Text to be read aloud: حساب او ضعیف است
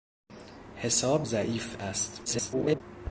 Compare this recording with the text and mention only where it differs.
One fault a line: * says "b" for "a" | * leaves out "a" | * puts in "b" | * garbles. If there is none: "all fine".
* leaves out "او"
* garbles